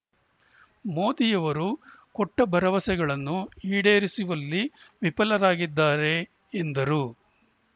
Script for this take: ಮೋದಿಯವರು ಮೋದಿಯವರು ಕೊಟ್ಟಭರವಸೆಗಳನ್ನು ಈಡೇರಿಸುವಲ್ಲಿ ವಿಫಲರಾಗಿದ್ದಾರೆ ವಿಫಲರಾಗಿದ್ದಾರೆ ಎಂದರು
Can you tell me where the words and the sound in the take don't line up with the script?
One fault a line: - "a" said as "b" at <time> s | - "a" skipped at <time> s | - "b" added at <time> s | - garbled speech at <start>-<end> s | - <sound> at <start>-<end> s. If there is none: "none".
- "ಮೋದಿಯವರು" skipped at 1.7 s
- "ವಿಫಲರಾಗಿದ್ದಾರೆ" skipped at 6.2 s